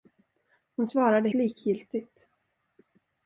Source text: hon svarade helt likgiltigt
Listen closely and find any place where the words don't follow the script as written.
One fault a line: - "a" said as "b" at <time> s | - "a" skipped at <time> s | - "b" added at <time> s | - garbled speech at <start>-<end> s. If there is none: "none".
- "helt" skipped at 1.3 s